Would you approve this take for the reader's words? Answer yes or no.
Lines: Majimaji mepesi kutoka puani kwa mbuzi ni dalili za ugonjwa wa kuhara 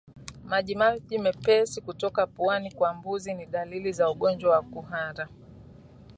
yes